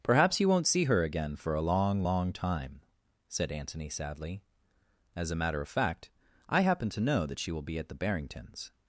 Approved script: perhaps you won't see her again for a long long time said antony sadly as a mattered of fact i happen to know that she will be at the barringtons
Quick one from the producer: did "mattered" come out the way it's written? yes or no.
no